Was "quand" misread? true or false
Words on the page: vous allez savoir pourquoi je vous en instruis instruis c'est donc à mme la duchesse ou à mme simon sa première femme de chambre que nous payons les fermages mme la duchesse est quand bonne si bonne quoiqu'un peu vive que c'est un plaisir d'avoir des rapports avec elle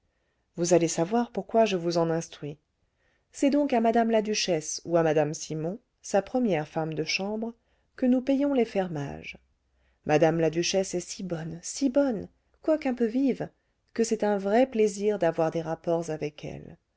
true